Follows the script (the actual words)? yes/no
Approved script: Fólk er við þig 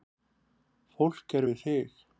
yes